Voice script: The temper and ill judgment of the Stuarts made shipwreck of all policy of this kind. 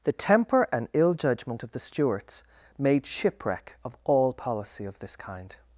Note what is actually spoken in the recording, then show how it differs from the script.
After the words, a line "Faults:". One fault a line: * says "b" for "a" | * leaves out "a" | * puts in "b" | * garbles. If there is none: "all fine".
The temper and ill judgment of the Stuarts made shipwreck of all policy of this kind.
Faults:
all fine